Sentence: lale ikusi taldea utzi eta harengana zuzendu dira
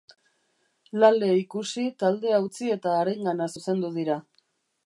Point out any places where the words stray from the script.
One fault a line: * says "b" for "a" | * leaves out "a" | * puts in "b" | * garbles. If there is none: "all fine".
all fine